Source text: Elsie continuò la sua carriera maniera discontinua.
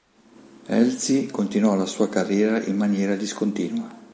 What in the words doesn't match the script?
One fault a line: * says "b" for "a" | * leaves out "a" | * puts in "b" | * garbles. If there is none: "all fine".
* puts in "in"